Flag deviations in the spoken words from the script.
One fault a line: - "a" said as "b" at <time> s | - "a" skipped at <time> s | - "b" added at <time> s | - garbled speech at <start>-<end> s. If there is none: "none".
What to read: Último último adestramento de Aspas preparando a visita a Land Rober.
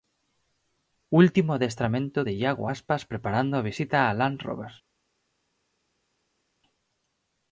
- "último" skipped at 1.5 s
- "Iago" added at 2.3 s